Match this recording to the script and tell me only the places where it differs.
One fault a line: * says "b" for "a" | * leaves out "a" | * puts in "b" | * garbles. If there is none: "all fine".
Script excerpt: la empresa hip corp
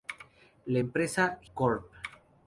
* leaves out "hip"